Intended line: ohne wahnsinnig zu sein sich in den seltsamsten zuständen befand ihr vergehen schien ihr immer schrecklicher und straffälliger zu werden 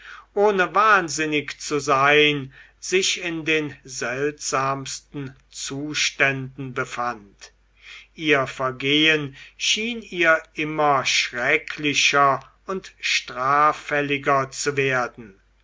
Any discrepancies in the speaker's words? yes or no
no